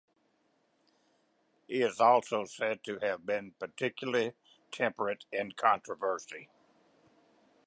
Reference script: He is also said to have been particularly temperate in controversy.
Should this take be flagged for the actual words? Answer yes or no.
no